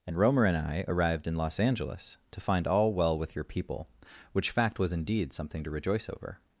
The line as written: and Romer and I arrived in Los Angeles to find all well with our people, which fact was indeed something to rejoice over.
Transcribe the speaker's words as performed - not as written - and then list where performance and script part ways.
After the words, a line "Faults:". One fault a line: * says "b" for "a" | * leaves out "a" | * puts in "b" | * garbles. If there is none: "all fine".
and Romer and I arrived in Los Angeles to find all well with your people, which fact was indeed something to rejoice over.
Faults:
* says "your" for "our"